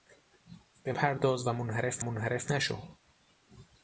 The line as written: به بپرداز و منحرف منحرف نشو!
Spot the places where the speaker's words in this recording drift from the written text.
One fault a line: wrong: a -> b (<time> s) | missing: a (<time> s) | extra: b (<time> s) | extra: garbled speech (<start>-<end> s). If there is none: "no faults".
no faults